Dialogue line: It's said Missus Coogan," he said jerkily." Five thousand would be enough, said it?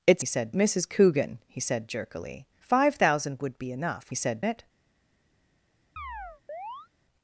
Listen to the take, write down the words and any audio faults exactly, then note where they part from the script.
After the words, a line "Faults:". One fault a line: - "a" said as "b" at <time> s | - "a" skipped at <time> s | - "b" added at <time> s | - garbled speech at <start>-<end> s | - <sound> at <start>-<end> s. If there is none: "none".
It's said Missus Coogan," he said jerkily." Five thousand would be enough, said it?
Faults:
- chirp at 6.0-6.9 s